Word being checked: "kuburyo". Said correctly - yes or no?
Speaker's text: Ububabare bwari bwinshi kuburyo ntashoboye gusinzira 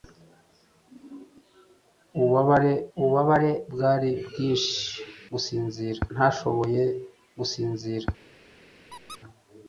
no